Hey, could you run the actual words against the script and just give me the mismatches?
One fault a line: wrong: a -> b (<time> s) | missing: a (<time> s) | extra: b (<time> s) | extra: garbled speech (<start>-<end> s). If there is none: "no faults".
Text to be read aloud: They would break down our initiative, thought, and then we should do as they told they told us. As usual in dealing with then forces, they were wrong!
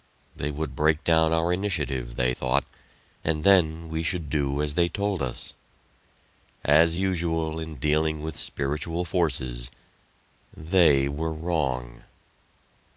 extra: they (2.1 s)
missing: they told (5.2 s)
wrong: then -> spiritual (8.4 s)